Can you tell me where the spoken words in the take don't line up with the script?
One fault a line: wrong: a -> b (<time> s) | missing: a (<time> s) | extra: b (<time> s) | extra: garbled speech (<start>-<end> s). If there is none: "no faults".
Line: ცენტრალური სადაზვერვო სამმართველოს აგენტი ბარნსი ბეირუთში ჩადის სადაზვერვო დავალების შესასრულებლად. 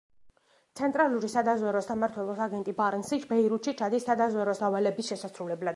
no faults